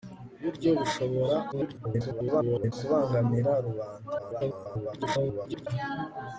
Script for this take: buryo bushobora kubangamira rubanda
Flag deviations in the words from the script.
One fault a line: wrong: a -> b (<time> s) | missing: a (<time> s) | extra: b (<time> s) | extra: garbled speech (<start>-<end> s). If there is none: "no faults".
extra: garbled speech (1.5-2.7 s)
extra: garbled speech (4.2-5.7 s)